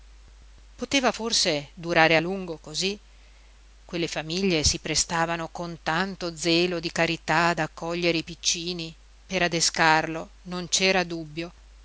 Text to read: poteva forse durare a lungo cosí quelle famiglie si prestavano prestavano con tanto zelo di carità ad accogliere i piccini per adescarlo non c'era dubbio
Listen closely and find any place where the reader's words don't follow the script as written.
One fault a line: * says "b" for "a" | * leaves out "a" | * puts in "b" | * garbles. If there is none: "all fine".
* leaves out "prestavano"